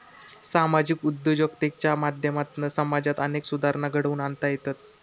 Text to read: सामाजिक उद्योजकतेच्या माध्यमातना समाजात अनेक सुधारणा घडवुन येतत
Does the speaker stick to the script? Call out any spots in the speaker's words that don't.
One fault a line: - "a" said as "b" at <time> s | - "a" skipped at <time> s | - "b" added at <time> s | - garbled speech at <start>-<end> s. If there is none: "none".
- "आणता" added at 4.2 s